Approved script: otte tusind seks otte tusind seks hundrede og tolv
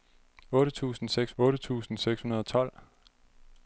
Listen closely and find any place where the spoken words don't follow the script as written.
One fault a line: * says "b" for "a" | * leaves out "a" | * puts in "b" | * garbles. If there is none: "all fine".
all fine